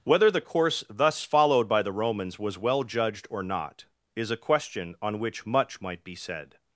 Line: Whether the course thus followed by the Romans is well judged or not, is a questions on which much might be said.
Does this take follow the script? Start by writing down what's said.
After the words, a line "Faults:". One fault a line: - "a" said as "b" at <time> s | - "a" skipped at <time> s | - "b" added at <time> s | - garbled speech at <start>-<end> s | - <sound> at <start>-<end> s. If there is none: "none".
Whether the course thus followed by the Romans was well judged or not, is a question on which much might be said.
Faults:
- "is" said as "was" at 2.4 s
- "questions" said as "question" at 4.4 s